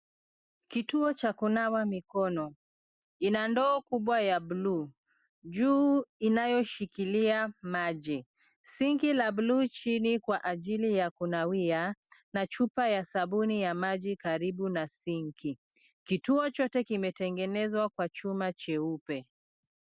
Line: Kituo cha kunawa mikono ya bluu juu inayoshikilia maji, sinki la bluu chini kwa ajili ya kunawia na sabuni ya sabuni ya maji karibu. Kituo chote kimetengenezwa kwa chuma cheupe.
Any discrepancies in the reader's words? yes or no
yes